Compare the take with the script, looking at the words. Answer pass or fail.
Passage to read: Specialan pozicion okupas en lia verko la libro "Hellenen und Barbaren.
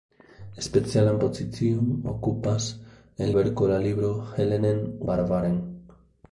fail